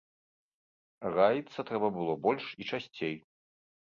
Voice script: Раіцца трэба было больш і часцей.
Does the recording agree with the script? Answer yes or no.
yes